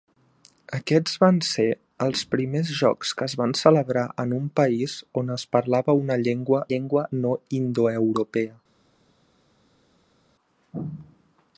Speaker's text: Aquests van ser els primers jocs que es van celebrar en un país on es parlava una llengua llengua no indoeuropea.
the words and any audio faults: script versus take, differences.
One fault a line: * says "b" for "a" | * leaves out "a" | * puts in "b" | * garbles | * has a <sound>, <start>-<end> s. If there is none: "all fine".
all fine